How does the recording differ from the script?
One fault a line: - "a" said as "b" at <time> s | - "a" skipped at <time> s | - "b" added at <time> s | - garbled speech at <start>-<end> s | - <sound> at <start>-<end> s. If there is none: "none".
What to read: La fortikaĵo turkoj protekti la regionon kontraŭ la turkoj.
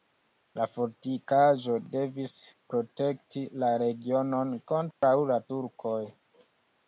- "turkoj" said as "devis" at 2.0 s
- dropout at 4.9-5.0 s